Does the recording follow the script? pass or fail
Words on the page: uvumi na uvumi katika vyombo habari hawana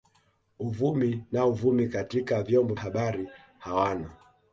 pass